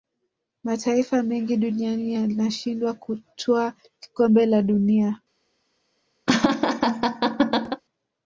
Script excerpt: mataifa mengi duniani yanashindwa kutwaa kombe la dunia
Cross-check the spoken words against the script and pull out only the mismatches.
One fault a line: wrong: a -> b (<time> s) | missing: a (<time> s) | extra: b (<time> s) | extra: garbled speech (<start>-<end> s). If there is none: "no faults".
no faults